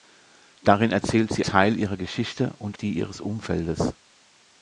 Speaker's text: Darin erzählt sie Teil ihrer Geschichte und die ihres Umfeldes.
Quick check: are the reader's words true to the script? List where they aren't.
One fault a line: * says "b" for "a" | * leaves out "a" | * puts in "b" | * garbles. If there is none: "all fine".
all fine